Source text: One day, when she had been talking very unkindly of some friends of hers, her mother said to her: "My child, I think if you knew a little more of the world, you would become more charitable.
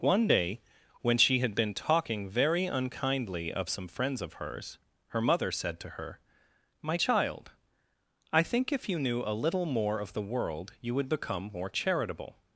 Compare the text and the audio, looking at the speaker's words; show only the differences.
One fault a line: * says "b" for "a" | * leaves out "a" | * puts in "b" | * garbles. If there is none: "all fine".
all fine